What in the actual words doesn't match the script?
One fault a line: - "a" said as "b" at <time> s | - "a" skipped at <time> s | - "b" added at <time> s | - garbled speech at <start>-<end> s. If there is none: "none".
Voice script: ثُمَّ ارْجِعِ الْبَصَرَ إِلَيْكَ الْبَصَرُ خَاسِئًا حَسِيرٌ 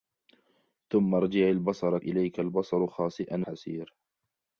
none